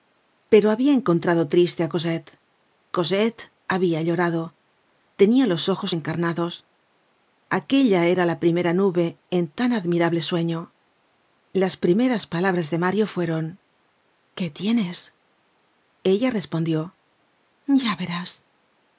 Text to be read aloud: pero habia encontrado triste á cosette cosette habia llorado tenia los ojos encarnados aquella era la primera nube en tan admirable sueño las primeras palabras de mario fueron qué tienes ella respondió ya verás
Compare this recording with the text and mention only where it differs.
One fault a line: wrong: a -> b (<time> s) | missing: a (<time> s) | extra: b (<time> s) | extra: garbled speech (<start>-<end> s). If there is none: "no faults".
no faults